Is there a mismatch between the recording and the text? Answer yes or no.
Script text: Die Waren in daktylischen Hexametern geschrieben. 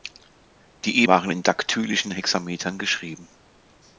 no